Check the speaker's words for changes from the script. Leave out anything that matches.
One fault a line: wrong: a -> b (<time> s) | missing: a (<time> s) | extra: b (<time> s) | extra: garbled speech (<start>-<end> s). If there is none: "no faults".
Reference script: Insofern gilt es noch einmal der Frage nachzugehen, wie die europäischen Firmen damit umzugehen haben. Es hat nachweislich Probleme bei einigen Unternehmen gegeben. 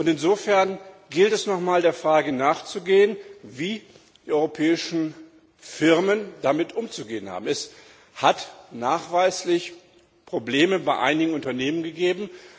no faults